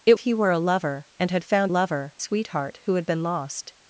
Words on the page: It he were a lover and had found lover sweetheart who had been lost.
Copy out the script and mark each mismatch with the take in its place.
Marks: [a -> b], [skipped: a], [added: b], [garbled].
It he were a lover and had found lover sweetheart who had been lost.